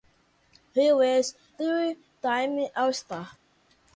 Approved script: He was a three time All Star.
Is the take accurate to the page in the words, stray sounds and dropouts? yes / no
no